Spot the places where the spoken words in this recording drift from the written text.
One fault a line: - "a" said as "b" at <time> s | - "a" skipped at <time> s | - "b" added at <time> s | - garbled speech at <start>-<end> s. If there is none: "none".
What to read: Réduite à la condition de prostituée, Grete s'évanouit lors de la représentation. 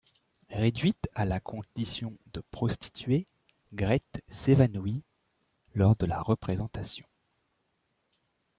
none